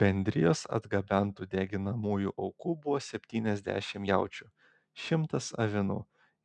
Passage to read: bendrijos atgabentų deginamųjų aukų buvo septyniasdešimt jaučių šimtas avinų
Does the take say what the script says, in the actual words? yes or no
yes